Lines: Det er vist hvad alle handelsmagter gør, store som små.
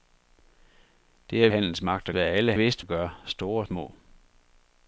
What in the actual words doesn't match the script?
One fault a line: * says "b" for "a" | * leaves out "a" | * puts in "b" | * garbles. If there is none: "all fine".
* says "handelsmagter" for "vist"
* says "vist" for "handelsmagter"
* leaves out "som"